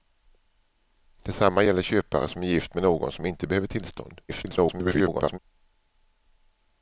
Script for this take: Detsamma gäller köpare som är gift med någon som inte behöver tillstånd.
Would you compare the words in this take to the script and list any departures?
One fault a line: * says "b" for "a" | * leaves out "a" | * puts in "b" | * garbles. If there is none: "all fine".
* garbles